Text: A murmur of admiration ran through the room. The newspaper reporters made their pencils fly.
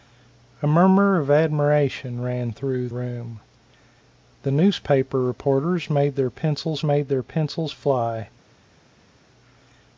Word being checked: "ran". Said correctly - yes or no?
yes